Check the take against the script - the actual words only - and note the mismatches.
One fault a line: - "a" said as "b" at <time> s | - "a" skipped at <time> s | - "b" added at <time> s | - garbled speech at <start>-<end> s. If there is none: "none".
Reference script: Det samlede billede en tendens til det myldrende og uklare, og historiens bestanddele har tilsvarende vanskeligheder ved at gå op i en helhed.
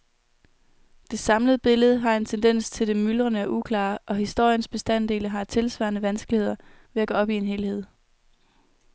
- "har" added at 2.0 s